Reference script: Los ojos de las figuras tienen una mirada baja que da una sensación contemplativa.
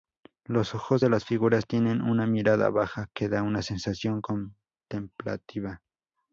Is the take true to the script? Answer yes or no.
yes